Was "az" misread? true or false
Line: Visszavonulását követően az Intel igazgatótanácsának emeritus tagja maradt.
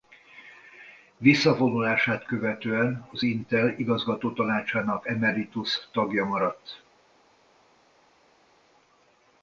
false